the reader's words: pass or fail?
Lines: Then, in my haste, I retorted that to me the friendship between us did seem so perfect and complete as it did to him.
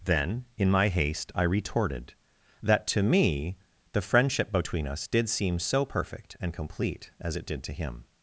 pass